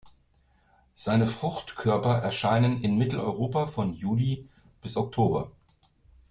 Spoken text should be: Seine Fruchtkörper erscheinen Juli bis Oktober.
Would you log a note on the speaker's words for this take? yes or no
yes